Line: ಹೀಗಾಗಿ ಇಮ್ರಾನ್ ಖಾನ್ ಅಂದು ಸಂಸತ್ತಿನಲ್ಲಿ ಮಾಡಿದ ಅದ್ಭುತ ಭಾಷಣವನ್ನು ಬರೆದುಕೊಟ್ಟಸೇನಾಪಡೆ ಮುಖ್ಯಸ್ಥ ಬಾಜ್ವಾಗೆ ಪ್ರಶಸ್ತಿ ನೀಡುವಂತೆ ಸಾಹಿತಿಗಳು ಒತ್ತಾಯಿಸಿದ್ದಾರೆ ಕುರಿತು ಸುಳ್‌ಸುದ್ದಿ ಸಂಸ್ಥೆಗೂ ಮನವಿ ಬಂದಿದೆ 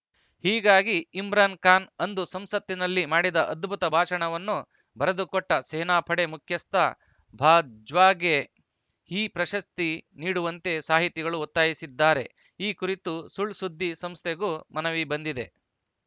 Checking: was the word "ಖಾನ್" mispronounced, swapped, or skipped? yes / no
no